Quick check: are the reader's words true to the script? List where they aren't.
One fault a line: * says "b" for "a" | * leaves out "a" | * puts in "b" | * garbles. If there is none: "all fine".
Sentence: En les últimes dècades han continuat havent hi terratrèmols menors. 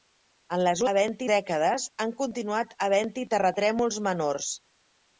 * says "havent" for "últimes"